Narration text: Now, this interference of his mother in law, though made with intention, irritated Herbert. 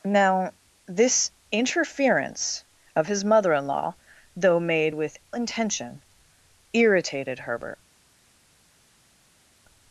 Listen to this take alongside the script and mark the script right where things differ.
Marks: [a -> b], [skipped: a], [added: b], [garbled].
Now, this interference of his mother in law, though made with intention, irritated Herbert.